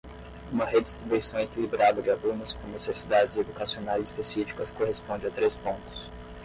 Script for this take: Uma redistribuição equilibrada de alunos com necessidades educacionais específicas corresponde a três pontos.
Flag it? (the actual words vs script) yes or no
no